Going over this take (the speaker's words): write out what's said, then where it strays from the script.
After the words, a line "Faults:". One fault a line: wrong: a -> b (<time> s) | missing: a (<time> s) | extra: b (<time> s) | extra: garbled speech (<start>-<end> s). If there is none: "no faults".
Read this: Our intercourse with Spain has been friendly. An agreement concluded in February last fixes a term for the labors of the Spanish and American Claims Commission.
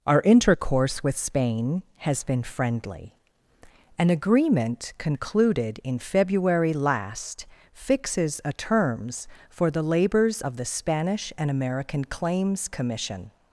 Our intercourse with Spain has been friendly. An agreement concluded in February last fixes a terms for the labors of the Spanish and American Claims Commission.
Faults:
wrong: term -> terms (8.5 s)